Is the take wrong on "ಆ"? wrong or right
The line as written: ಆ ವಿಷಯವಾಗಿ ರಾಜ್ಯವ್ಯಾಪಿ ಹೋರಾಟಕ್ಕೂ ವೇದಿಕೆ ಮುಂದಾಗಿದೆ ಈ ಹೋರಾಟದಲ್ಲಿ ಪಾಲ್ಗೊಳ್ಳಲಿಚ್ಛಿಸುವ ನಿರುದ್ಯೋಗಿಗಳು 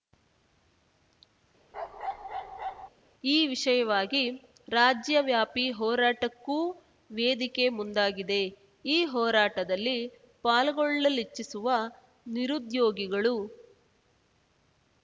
wrong